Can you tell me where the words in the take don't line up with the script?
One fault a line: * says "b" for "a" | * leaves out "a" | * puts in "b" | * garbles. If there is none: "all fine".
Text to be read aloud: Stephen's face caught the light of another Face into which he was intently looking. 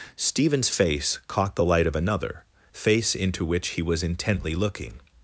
all fine